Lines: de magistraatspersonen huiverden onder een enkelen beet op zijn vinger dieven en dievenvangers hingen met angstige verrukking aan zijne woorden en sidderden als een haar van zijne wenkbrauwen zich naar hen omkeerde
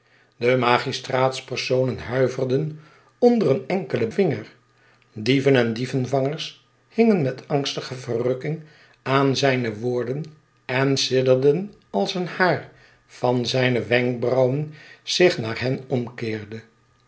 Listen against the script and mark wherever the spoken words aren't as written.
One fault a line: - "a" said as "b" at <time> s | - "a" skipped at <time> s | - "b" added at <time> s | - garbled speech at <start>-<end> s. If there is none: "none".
- "beet op zijn" skipped at 4.1 s